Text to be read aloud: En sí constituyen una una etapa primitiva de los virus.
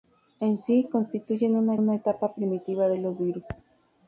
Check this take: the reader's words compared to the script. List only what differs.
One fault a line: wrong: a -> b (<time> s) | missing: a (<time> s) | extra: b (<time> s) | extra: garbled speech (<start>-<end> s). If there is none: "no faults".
no faults